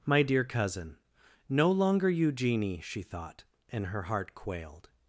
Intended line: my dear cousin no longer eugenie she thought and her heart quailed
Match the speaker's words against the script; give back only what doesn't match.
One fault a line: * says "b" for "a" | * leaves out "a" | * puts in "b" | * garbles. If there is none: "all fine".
all fine